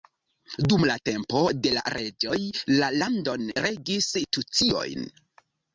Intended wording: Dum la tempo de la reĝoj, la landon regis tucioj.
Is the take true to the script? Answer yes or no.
yes